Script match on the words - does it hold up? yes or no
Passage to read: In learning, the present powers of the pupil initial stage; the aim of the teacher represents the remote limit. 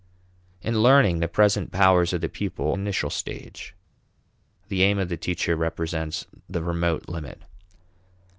yes